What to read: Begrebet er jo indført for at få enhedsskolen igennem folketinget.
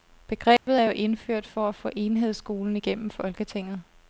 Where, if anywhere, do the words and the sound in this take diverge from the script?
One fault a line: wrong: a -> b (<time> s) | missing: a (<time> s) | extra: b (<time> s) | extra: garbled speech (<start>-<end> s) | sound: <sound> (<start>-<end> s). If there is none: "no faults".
sound: dropout (0.6-0.7 s)